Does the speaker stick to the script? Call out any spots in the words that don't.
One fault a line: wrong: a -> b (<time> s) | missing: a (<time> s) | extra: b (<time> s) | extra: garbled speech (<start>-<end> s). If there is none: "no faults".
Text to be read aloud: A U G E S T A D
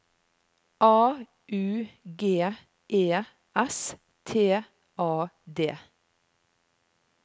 no faults